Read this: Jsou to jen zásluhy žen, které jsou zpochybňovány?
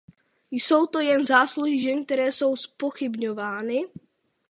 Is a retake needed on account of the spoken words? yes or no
no